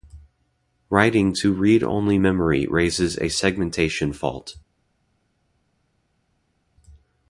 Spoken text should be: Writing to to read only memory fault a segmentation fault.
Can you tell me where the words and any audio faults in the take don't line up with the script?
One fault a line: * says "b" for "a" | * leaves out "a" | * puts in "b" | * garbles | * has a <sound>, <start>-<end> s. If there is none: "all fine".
* leaves out "to"
* says "raises" for "fault"